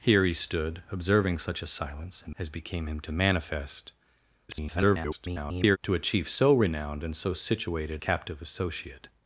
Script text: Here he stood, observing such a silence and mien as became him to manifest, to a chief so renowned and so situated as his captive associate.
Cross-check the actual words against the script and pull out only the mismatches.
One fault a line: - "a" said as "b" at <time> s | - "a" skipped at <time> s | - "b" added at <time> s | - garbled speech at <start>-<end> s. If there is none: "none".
- "mien" skipped at 2.4 s
- garbled speech at 4.5-5.8 s
- "as his" skipped at 8.0 s